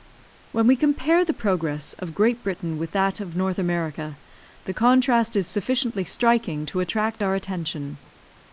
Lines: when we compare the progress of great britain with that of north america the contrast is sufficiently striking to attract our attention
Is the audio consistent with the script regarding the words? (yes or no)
yes